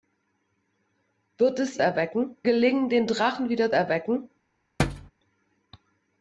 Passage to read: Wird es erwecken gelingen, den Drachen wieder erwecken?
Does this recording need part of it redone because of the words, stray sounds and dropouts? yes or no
yes